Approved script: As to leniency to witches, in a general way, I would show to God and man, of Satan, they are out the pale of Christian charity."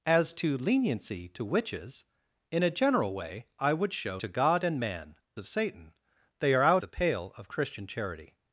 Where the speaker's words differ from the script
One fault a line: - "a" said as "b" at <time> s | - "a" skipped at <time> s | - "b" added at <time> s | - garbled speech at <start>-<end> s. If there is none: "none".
none